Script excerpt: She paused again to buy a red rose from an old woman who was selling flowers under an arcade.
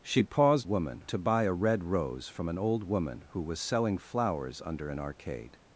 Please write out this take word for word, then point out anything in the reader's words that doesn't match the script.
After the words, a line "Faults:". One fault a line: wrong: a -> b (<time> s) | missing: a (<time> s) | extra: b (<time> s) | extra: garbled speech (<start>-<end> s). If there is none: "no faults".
She paused woman to buy a red rose from an old woman who was selling flowers under an arcade.
Faults:
wrong: again -> woman (0.6 s)